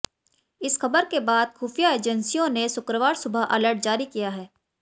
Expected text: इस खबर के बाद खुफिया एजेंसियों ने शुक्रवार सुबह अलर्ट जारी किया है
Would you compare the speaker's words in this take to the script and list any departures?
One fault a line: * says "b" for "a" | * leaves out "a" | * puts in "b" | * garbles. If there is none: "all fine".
all fine